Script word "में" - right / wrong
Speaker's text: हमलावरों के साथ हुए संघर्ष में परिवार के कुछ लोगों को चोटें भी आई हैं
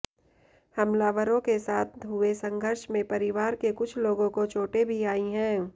right